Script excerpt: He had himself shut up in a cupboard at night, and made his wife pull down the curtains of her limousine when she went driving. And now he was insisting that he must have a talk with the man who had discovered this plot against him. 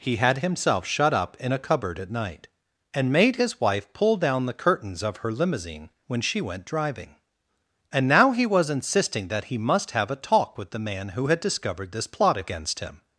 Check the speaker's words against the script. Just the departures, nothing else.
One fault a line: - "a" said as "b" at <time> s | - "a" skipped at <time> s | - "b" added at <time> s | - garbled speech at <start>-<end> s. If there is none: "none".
none